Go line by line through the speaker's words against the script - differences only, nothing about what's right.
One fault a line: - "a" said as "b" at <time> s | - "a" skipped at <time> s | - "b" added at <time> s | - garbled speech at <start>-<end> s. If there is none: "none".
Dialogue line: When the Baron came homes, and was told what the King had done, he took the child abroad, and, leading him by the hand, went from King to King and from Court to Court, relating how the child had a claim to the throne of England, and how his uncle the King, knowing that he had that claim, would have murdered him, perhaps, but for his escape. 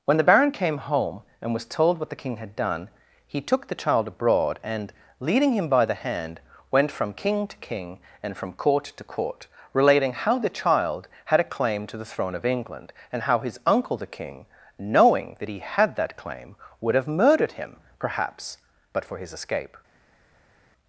- "homes" said as "home" at 0.8 s